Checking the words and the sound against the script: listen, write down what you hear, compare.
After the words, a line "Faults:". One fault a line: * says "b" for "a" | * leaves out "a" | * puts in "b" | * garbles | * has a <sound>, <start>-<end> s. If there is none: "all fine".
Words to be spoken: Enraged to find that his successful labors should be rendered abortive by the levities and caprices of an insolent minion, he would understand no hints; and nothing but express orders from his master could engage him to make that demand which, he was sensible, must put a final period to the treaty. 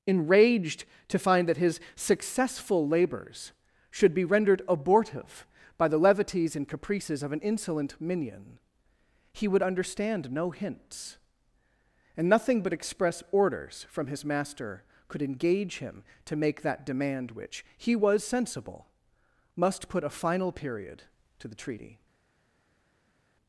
Enraged to find that his successful labors should be rendered abortive by the levities and caprices of an insolent minion, he would understand no hints; and nothing but express orders from his master could engage him to make that demand which, he was sensible, must put a final period to the treaty.
Faults:
all fine